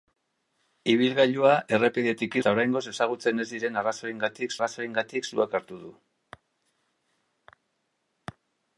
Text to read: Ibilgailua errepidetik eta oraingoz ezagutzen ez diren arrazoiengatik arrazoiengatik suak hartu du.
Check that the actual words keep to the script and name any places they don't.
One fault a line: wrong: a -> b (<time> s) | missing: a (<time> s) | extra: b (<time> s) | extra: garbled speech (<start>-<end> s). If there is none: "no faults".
no faults